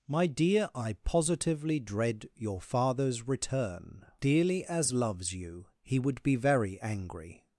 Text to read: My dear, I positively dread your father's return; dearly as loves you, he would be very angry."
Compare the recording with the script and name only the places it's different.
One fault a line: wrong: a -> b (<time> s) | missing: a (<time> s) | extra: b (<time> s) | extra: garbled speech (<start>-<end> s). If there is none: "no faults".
no faults